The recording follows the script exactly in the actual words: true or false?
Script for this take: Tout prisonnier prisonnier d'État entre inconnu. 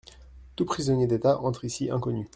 false